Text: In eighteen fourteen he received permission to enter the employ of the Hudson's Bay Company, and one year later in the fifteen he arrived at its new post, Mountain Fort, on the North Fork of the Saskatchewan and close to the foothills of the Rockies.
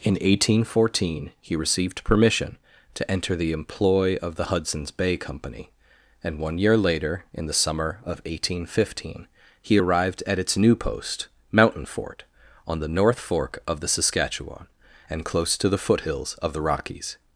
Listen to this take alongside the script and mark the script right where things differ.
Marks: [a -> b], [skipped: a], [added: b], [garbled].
In eighteen fourteen he received permission to enter the employ of the Hudson's Bay Company, and one year later in the [added: summer of eighteen] fifteen he arrived at its new post, Mountain Fort, on the North Fork of the Saskatchewan and close to the foothills of the Rockies.